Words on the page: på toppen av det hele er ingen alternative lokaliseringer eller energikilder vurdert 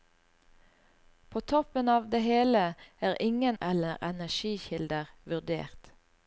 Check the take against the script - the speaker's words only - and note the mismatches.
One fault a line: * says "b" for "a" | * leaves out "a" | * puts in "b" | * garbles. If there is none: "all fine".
* leaves out "alternative lokaliseringer"